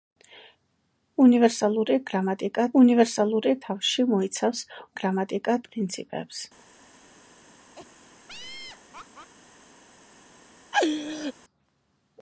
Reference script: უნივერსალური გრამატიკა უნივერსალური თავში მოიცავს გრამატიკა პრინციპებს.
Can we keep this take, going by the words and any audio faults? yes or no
no